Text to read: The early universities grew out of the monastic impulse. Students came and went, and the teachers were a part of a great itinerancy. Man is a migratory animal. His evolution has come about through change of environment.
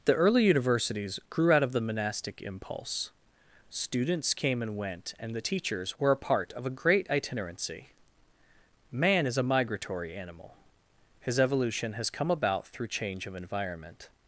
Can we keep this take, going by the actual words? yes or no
yes